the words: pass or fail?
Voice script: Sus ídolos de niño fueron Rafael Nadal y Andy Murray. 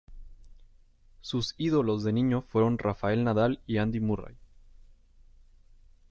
pass